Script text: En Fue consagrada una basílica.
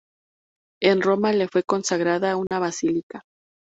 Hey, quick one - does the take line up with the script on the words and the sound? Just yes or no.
no